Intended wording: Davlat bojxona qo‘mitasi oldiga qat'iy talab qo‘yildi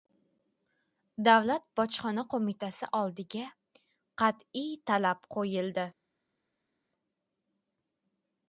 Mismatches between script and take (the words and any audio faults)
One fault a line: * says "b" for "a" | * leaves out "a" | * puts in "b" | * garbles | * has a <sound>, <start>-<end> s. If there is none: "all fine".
all fine